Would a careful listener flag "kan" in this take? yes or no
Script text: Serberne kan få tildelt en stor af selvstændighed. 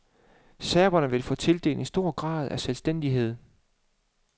yes